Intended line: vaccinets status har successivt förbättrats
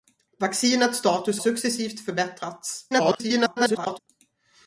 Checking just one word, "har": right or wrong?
wrong